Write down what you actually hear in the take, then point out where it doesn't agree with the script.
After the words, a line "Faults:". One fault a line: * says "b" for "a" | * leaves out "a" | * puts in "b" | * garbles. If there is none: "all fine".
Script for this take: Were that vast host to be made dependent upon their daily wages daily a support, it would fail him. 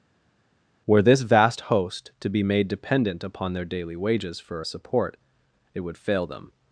Were this vast host to be made dependent upon their daily wages for a support, it would fail them.
Faults:
* says "this" for "that"
* says "for" for "daily"
* says "them" for "him"